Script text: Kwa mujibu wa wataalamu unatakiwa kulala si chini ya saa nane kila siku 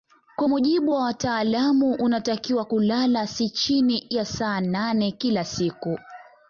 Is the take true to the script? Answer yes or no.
yes